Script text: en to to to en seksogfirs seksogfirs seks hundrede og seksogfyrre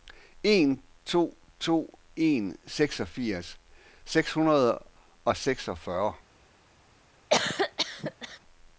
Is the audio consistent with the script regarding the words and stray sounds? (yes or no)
no